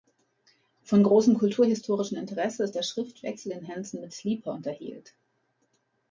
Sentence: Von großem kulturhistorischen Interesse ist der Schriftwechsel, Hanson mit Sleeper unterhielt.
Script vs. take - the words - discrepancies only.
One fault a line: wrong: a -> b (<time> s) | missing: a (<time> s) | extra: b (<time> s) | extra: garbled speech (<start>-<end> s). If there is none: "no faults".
extra: den (3.5 s)